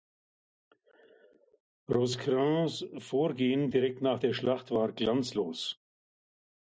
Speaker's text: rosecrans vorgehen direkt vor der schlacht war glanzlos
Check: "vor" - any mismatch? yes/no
yes